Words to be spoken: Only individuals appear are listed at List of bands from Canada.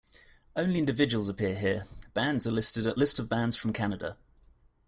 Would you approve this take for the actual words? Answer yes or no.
no